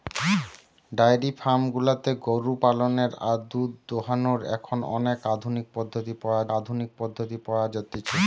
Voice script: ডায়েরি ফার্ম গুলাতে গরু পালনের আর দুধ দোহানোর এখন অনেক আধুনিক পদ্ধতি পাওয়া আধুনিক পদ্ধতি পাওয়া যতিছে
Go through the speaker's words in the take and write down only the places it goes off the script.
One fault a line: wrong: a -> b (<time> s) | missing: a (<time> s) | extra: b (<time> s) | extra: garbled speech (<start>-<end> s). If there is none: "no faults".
no faults